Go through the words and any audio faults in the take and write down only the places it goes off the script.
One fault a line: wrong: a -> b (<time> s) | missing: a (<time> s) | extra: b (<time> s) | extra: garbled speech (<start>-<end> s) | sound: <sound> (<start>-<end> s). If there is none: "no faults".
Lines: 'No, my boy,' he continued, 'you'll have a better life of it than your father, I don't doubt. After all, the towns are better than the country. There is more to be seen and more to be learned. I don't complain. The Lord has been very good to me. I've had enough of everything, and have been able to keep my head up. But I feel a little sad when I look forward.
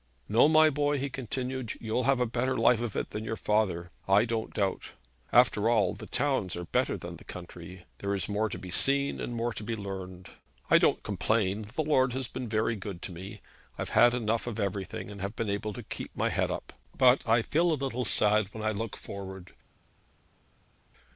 no faults